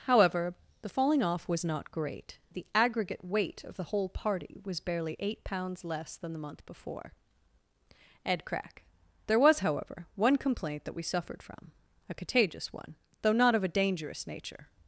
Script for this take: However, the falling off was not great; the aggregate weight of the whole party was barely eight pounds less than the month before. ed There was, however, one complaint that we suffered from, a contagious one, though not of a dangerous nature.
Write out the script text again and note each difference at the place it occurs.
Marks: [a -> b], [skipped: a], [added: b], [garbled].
However, the falling off was not great; the aggregate weight of the whole party was barely eight pounds less than the month before. ed [added: crack] There was, however, one complaint that we suffered from, a contagious one, though not of a dangerous nature.